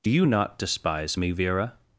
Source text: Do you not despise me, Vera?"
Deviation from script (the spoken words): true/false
false